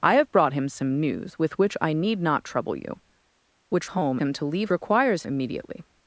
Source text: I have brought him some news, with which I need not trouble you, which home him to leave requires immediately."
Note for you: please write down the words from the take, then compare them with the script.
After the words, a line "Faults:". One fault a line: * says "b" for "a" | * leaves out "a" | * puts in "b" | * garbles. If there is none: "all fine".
I have brought him some news, with which I need not trouble you, which home him to leave requires immediately."
Faults:
all fine